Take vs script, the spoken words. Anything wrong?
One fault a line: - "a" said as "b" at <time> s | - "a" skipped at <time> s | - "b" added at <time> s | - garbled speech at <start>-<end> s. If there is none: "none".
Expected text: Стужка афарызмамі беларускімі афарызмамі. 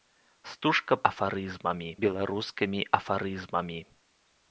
none